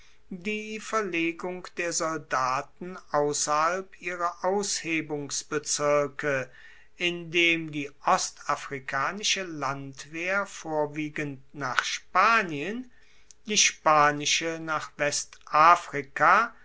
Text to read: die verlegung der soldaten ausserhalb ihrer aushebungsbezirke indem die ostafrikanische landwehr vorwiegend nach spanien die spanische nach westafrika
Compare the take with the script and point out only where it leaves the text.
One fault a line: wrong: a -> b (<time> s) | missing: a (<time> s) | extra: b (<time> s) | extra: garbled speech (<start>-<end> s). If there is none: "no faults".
no faults